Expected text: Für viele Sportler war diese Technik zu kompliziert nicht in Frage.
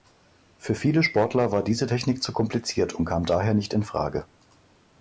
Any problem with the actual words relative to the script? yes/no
yes